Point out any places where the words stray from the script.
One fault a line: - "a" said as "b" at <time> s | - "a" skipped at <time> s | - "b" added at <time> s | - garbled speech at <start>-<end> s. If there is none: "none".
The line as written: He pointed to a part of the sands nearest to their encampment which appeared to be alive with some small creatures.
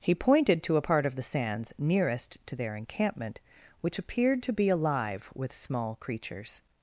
- "some" skipped at 5.5 s